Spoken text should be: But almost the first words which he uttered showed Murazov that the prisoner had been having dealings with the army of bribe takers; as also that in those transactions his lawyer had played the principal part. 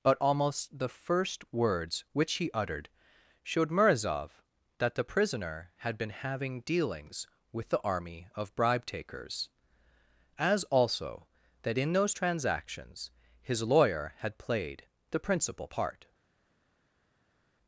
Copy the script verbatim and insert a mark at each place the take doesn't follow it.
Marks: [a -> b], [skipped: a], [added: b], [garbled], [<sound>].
But almost the first words which he uttered showed Murazov that the prisoner had been having dealings with the army of bribe takers; as also that in those transactions his lawyer had played the principal part.